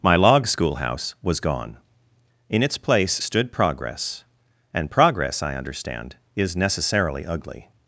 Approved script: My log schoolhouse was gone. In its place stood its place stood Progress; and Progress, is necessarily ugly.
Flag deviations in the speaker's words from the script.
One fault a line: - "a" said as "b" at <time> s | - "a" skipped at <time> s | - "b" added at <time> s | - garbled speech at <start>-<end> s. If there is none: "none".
- "its place stood" said as "Progress and" at 3.5 s
- "and Progress" said as "I understand" at 5.4 s